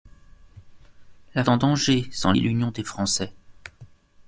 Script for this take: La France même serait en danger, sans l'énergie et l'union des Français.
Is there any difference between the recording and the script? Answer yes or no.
yes